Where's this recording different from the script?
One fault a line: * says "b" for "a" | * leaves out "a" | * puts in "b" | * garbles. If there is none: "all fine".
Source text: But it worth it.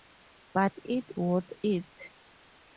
all fine